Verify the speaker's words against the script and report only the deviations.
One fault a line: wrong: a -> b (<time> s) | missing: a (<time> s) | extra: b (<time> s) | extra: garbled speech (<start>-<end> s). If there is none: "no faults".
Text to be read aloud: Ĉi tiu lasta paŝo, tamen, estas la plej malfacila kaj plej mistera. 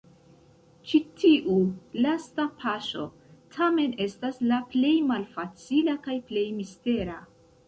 no faults